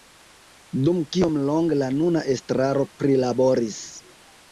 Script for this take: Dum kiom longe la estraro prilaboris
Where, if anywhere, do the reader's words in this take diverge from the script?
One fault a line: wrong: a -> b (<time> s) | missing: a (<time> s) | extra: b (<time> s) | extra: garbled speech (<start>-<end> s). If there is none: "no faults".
extra: nuna (2.0 s)